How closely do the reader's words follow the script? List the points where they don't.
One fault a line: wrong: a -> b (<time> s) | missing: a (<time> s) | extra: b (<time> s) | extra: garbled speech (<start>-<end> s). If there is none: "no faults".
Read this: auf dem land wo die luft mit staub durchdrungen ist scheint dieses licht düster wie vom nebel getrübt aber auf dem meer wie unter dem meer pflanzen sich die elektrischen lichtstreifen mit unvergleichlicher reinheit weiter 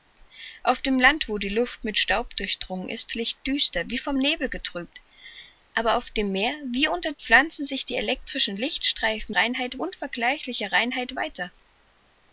missing: scheint dieses (3.1 s)
missing: dem meer (7.1 s)
wrong: mit -> reinheit (9.3 s)